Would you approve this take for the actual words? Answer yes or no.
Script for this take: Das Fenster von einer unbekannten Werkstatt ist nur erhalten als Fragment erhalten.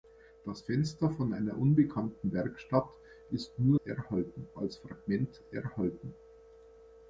yes